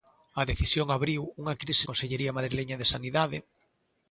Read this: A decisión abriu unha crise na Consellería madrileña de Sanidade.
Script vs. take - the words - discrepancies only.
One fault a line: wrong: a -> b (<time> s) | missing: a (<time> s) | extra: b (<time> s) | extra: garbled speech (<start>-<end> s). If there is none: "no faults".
missing: na (1.9 s)